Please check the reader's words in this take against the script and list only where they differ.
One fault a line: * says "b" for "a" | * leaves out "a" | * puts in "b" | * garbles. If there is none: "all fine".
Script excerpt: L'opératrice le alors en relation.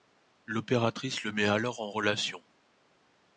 * puts in "met"